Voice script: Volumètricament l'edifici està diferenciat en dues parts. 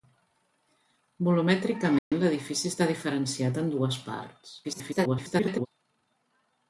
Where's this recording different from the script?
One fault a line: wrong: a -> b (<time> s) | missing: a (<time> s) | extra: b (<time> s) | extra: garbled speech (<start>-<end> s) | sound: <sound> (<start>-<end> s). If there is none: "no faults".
sound: dropout (2.0-2.1 s)
extra: garbled speech (4.6-5.7 s)